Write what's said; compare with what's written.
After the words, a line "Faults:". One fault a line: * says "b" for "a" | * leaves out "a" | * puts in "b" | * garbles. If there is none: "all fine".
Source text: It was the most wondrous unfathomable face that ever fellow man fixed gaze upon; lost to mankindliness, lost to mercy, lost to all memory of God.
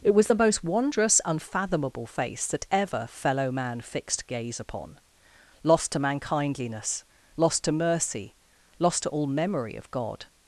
It was the most wondrous unfathomable face that ever fellow man fixed gaze upon; lost to mankindliness, lost to mercy, lost to all memory of God.
Faults:
all fine